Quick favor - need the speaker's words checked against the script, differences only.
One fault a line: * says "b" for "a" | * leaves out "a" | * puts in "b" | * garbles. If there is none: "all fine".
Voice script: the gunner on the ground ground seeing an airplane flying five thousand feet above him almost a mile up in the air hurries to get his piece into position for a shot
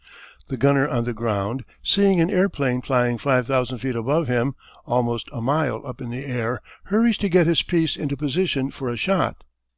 * leaves out "ground"